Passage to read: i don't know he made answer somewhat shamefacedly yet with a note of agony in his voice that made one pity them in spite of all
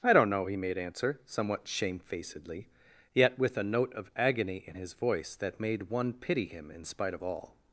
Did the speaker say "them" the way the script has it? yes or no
no